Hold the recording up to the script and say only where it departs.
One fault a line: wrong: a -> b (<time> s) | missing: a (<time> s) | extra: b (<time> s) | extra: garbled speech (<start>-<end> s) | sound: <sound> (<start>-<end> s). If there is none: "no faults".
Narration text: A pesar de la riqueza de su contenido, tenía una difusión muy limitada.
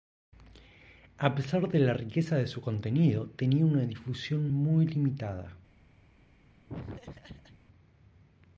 sound: laugh (6.7-7.6 s)